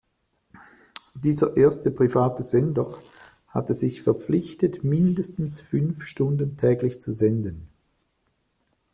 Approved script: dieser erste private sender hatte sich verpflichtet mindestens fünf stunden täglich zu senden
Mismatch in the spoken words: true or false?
false